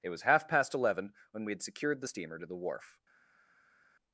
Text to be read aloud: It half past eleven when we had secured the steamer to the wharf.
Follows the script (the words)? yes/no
no